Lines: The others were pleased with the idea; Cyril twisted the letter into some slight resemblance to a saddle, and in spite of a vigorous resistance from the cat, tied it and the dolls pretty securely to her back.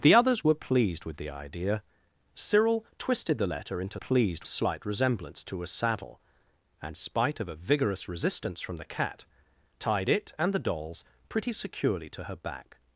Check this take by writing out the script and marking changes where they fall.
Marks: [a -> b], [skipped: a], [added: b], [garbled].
The others were pleased with the idea; Cyril twisted the letter into [some -> pleased] slight resemblance to a saddle, and [skipped: in] spite of a vigorous resistance from the cat, tied it and the dolls pretty securely to her back.